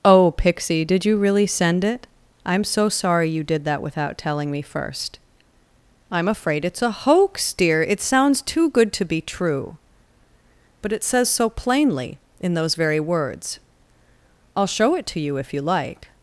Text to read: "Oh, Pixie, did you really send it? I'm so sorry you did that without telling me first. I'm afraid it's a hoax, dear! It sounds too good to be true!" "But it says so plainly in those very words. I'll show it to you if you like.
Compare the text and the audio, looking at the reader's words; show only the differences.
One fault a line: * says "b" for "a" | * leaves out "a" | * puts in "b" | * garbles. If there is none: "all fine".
all fine